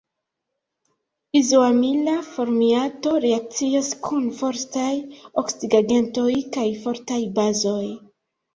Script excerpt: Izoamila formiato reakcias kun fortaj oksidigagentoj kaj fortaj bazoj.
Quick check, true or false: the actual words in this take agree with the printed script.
true